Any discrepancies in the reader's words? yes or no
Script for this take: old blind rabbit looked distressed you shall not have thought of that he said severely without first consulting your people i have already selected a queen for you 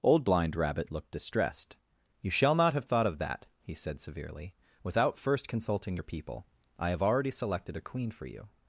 no